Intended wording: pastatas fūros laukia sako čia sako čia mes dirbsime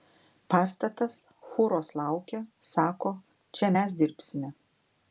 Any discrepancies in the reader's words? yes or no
yes